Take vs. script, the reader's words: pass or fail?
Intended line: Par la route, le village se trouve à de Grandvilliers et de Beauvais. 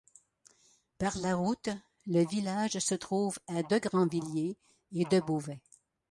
pass